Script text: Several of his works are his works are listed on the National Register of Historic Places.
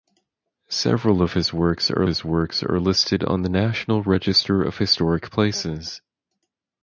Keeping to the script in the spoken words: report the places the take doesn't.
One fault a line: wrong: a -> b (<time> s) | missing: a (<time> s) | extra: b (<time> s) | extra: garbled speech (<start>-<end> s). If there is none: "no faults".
no faults